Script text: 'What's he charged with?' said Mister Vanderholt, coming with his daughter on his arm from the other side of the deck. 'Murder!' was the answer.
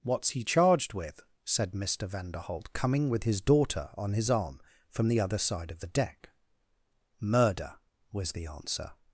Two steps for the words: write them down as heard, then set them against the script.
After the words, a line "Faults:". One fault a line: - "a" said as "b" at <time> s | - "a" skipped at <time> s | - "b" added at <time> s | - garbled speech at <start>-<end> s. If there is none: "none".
'What's he charged with?' said Mister Vanderholt, coming with his daughter on his arm from the other side of the deck. 'Murder!' was the answer.
Faults:
none